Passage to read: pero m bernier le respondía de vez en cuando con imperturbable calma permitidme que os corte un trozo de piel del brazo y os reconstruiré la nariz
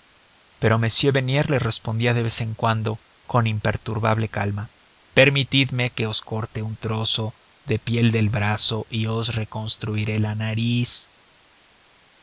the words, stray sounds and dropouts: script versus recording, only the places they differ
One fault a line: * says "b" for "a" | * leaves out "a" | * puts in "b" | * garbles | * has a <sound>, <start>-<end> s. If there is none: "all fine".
all fine